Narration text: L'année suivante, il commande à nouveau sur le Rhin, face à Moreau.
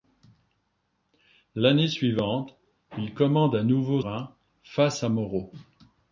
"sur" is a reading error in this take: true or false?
true